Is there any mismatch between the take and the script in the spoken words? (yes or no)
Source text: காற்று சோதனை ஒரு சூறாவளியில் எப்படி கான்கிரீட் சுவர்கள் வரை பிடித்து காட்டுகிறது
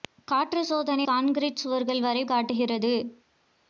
yes